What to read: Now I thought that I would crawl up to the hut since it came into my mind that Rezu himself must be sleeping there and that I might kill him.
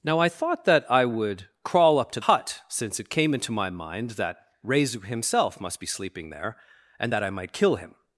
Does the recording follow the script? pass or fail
fail